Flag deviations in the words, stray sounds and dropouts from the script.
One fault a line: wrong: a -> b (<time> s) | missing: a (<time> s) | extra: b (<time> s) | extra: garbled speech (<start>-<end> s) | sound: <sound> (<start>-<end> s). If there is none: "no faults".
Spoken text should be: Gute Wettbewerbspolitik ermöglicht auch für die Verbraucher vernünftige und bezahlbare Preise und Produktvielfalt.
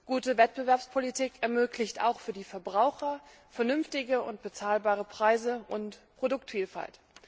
no faults